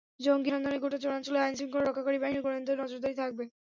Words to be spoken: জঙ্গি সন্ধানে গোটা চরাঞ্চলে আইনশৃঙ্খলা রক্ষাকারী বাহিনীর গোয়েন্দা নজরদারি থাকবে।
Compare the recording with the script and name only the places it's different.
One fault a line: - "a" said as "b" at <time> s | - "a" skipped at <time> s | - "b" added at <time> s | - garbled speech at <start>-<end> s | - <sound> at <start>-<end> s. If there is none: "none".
none